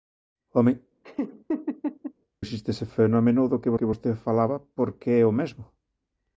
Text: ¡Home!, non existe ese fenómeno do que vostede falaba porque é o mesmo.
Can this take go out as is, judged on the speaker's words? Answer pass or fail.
fail